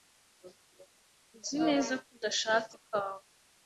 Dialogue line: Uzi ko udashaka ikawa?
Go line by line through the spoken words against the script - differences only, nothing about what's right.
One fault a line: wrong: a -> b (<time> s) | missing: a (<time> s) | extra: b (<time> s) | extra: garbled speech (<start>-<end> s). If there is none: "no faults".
extra: neza (1.7 s)